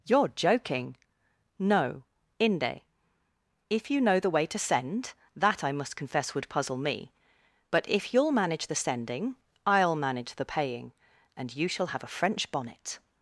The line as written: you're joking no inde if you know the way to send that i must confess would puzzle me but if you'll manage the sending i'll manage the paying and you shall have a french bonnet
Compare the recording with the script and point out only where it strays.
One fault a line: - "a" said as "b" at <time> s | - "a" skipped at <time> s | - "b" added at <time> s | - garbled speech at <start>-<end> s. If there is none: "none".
none